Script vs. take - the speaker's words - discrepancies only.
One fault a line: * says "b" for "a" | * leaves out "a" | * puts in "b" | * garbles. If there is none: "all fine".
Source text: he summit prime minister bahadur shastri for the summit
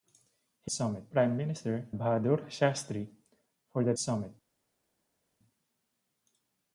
all fine